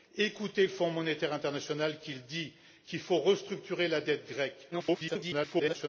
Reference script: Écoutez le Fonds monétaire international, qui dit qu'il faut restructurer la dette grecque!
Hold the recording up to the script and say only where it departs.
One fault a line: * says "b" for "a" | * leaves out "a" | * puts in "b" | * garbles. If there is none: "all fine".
* garbles